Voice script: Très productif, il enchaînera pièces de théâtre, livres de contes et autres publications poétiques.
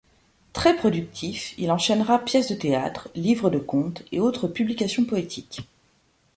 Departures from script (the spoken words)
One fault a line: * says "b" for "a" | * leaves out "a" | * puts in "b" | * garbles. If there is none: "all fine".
all fine